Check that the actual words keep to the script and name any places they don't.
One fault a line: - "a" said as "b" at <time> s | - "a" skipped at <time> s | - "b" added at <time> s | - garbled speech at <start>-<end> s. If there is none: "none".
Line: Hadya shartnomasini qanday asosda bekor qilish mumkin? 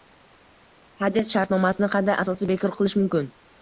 none